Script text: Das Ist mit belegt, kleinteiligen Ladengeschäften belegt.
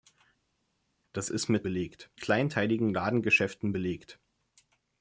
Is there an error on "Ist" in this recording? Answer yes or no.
no